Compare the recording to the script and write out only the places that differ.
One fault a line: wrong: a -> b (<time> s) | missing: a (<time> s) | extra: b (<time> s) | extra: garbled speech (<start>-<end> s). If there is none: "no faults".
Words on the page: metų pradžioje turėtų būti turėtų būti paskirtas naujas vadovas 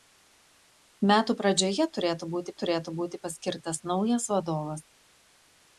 no faults